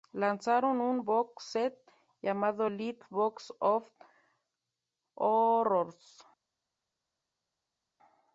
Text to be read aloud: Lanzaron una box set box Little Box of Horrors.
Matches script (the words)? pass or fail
fail